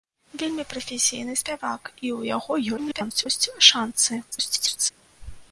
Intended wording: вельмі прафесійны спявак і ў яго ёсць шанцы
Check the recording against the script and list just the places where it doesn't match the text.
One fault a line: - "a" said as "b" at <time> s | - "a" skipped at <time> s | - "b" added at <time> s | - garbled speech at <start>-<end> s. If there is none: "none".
- garbled speech at 2.8-3.3 s
- garbled speech at 4.3-4.9 s